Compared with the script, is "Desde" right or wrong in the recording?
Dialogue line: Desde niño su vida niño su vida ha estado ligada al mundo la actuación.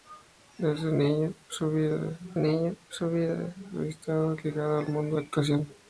right